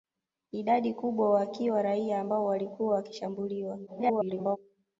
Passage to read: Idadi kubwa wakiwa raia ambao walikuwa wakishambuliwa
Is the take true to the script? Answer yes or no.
no